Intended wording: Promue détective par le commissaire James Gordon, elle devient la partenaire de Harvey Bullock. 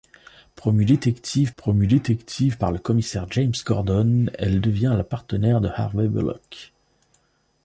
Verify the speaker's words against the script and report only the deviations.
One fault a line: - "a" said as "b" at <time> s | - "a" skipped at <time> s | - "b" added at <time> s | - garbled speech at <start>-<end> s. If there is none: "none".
- "promue détective" added at 1.6 s